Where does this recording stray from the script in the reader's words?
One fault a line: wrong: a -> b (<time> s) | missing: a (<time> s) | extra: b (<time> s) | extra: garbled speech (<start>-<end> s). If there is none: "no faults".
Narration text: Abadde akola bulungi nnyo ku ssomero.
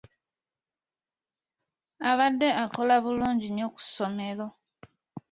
no faults